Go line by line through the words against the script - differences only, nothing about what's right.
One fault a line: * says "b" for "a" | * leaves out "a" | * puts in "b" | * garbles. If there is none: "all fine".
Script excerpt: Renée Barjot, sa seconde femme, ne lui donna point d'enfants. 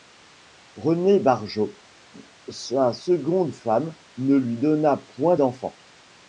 all fine